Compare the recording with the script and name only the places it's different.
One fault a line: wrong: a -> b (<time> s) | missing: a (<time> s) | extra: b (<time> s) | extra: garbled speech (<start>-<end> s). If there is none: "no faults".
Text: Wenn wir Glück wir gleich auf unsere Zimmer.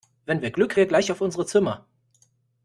no faults